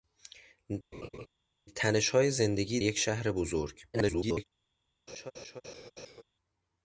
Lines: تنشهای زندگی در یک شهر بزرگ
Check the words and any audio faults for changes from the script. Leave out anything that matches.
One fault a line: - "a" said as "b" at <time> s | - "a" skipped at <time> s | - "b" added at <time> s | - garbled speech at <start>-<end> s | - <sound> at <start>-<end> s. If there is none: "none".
- laugh at 0.9-1.3 s
- "در" skipped at 2.8 s
- garbled speech at 3.9-4.4 s
- laugh at 5.1-6.2 s